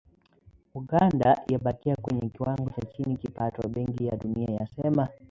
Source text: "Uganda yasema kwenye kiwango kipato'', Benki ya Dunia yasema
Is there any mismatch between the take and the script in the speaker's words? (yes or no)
yes